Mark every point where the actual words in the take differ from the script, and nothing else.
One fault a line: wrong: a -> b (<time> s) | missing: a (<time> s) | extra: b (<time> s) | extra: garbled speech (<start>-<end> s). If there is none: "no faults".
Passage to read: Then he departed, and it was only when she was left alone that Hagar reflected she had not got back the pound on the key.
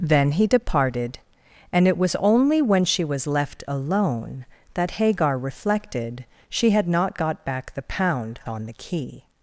no faults